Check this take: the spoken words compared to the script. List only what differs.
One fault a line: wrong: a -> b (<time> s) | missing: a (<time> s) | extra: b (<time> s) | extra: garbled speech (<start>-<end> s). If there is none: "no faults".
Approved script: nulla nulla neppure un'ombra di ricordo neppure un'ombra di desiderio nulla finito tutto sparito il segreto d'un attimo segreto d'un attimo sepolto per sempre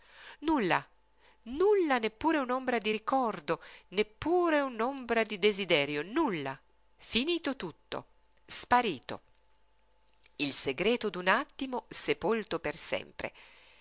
missing: segreto d'un attimo (11.9 s)